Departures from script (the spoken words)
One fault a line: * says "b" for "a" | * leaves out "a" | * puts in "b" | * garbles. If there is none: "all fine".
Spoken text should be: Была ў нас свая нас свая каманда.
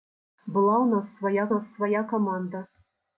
all fine